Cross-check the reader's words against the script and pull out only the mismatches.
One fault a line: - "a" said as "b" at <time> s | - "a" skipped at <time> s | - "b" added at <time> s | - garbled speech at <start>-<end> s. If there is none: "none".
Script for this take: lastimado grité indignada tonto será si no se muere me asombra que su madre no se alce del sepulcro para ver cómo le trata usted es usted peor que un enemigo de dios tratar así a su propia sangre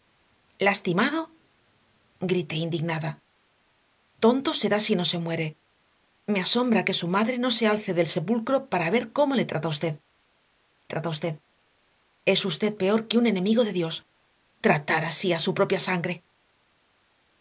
- "trata usted" added at 10.9 s